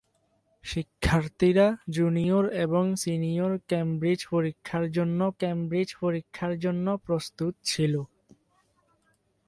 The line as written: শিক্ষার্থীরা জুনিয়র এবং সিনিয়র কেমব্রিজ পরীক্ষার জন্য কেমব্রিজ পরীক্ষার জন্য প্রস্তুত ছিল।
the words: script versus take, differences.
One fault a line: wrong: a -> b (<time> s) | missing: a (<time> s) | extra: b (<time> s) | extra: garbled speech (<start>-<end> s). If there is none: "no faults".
no faults